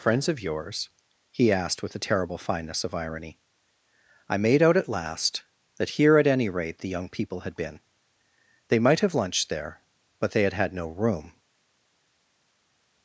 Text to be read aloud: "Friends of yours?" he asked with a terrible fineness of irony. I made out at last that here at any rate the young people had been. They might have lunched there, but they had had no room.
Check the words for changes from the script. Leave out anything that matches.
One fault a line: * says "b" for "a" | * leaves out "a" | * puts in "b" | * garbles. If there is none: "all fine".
all fine